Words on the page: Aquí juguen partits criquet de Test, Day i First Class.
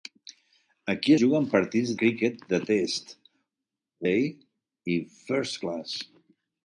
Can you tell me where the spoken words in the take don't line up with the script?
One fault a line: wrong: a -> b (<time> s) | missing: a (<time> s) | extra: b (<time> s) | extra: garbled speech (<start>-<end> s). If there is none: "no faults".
no faults